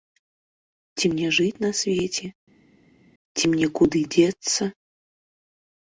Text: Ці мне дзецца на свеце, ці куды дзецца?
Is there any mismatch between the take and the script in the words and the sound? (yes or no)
yes